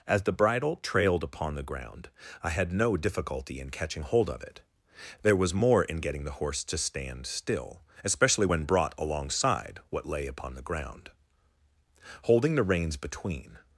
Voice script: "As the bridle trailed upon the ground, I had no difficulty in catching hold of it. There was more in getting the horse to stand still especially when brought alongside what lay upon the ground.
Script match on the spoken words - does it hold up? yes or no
no